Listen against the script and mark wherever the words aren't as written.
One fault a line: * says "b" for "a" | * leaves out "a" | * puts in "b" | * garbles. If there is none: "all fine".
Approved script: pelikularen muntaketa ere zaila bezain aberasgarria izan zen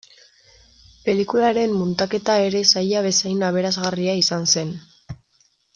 all fine